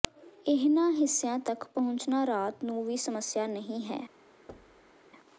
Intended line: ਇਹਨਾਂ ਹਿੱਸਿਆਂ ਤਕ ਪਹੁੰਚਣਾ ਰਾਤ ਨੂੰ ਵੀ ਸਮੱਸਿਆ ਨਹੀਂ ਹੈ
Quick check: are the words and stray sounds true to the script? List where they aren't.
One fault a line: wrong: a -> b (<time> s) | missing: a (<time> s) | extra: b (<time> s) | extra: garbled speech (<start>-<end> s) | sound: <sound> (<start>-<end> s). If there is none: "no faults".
sound: thud (4.5-4.9 s)